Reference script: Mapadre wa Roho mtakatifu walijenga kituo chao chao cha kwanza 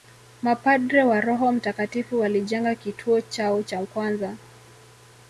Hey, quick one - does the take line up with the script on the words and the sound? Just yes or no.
no